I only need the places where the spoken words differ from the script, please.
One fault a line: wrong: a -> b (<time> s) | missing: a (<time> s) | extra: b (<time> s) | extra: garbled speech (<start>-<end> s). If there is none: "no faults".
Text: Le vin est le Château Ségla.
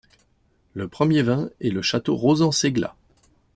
extra: premier (0.9 s)
extra: Rauzan (2.1 s)